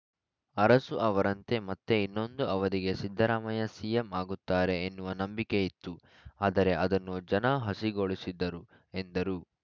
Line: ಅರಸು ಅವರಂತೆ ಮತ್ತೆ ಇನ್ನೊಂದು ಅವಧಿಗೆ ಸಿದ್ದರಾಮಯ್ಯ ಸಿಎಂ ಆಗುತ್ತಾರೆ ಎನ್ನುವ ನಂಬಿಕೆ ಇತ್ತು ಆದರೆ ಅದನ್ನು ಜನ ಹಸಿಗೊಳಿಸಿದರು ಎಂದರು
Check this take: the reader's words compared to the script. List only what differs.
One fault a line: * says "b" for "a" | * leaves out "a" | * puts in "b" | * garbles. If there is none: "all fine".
all fine